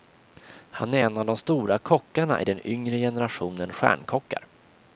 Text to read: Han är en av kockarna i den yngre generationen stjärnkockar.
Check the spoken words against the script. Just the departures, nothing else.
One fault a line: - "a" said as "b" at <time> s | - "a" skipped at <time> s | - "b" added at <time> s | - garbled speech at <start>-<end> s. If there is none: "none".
- "de stora" added at 1.3 s